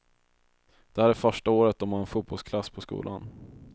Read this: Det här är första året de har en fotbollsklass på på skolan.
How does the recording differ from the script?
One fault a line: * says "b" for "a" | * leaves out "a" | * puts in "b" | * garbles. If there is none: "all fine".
* leaves out "på"